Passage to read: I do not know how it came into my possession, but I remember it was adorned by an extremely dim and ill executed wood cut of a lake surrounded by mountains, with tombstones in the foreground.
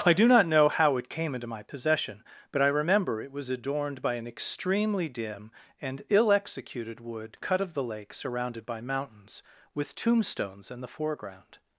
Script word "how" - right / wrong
right